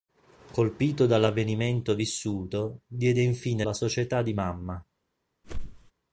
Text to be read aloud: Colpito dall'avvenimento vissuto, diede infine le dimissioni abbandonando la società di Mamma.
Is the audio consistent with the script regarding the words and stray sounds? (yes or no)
no